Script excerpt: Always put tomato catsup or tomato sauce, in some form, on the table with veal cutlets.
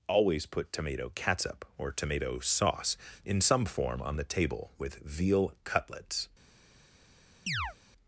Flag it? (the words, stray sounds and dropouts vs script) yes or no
yes